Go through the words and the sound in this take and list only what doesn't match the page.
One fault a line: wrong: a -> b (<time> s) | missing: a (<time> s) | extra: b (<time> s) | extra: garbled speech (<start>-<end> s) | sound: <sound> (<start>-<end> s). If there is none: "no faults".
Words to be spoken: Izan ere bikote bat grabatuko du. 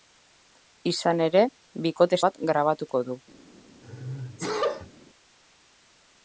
sound: sneeze (3.8-4.9 s)